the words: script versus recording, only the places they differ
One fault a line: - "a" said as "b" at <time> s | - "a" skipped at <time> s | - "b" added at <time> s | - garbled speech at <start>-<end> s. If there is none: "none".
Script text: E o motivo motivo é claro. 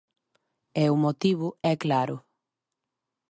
- "motivo" skipped at 1.5 s